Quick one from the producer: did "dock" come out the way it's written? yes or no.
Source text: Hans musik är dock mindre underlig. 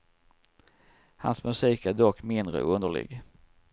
yes